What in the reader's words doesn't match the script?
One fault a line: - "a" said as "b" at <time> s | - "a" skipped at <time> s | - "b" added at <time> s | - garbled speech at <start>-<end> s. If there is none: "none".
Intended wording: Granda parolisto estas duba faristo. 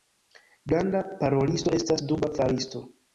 none